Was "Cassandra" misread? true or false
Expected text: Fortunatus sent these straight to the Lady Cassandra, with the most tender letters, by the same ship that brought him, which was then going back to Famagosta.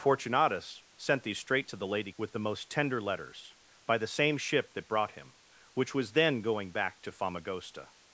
true